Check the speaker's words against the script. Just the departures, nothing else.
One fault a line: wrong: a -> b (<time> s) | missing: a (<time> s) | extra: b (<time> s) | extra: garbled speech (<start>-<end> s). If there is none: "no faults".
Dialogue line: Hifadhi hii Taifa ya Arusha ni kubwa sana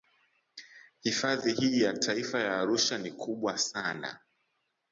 extra: ya (1.8 s)